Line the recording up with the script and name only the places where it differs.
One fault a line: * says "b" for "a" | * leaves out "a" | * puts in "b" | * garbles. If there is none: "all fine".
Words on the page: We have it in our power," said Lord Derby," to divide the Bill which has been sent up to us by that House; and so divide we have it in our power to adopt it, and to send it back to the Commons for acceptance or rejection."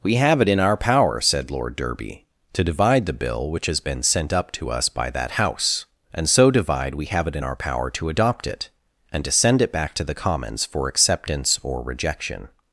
all fine